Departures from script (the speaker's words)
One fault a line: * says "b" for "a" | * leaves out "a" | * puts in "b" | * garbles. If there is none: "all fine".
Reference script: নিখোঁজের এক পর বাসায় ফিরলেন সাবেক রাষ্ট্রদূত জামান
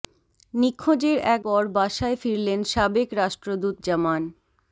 all fine